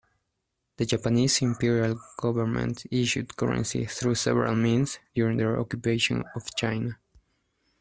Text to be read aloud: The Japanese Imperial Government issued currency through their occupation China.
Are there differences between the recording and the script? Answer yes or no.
yes